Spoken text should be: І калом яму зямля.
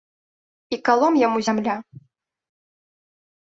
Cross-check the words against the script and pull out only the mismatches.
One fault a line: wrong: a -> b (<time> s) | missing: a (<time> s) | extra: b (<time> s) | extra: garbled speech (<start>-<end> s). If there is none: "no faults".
no faults